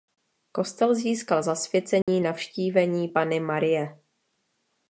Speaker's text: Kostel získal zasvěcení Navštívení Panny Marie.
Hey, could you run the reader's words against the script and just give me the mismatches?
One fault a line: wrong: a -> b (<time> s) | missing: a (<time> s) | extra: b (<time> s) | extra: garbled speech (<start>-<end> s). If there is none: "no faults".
no faults